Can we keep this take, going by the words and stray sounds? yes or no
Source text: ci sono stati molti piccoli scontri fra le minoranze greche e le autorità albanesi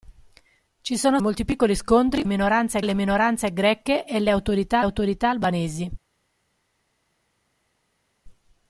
no